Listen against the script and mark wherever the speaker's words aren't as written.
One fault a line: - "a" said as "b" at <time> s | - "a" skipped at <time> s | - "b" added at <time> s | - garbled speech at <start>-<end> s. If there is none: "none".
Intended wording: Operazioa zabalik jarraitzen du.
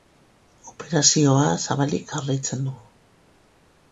none